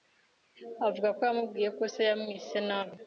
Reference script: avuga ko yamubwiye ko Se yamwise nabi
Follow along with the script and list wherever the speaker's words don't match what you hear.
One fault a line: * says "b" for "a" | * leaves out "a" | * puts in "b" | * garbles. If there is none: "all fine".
all fine